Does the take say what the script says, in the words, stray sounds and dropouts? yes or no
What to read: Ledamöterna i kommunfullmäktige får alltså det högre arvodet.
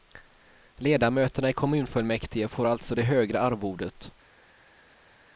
yes